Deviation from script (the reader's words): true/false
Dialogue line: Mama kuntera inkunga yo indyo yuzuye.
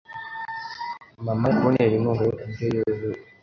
false